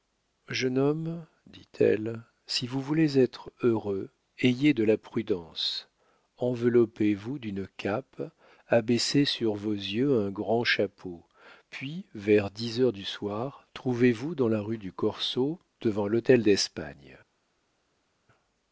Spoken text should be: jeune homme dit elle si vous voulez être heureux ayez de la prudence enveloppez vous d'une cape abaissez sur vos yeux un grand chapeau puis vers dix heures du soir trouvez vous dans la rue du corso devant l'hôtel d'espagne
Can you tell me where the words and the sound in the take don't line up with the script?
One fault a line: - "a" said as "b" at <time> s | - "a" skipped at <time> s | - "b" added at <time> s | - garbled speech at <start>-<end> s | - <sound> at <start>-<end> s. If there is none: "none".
none